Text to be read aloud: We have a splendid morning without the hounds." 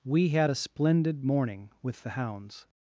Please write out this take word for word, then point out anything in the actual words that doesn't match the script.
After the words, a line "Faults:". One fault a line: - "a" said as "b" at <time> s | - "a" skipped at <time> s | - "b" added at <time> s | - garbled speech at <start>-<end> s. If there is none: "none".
We had a splendid morning with the hounds."
Faults:
- "have" said as "had" at 0.3 s
- "without" said as "with" at 1.8 s